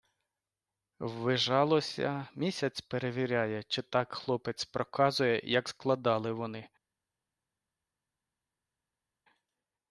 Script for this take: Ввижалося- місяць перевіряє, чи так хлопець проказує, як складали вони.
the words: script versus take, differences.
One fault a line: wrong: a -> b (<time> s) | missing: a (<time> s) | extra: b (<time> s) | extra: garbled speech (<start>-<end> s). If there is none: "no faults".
no faults